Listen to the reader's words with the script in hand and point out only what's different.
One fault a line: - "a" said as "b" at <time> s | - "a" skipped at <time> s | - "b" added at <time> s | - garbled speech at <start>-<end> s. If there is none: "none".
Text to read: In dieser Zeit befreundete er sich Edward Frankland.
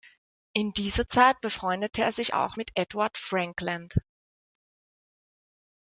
- "auch mit" added at 2.3 s